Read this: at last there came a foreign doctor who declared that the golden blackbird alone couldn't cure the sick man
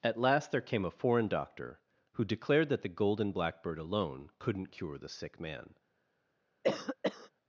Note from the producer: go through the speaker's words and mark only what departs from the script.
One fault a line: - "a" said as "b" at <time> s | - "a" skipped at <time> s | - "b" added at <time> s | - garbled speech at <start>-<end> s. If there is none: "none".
none